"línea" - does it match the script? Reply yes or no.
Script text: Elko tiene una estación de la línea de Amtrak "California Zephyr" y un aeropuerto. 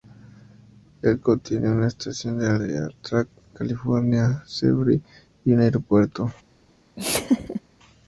no